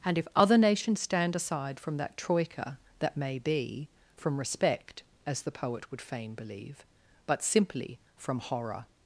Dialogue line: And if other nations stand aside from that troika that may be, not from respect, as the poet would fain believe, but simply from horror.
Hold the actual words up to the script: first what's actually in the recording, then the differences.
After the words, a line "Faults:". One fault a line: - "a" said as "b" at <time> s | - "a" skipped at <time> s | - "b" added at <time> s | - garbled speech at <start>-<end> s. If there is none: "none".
And if other nations stand aside from that troika that may be, from respect, as the poet would fain believe, but simply from horror.
Faults:
- "not" skipped at 3.9 s